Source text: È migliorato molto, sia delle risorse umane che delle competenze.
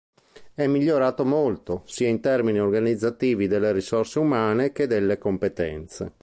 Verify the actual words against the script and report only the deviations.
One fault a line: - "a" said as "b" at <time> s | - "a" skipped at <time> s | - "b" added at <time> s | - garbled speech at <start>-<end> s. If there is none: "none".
- "in termini organizzativi" added at 2.1 s